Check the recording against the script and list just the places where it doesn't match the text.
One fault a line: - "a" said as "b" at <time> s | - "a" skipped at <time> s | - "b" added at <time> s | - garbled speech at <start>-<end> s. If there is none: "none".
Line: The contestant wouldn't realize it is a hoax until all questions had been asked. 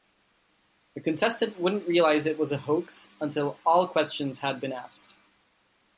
- "is" said as "was" at 2.4 s